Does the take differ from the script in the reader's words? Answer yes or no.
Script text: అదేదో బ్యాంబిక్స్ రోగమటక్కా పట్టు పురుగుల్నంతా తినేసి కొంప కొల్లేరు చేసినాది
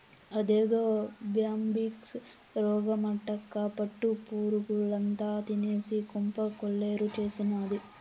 no